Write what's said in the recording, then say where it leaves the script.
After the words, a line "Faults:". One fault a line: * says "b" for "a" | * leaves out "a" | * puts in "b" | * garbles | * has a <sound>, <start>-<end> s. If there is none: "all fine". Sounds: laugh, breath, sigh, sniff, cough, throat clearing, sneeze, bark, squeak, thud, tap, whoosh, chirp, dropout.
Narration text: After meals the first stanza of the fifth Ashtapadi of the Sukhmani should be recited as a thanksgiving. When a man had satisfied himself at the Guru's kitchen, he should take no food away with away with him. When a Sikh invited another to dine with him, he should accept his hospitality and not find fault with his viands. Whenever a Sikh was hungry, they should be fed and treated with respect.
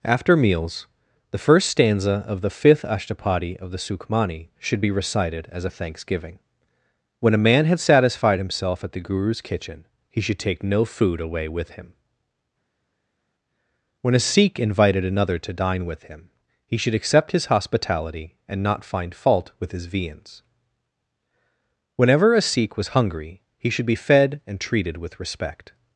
After meals the first stanza of the fifth Ashtapadi of the Sukhmani should be recited as a thanksgiving. When a man had satisfied himself at the Guru's kitchen, he should take no food away with him. When a Sikh invited another to dine with him, he should accept his hospitality and not find fault with his viands. Whenever a Sikh was hungry, he should be fed and treated with respect.
Faults:
* leaves out "away with"
* says "he" for "they"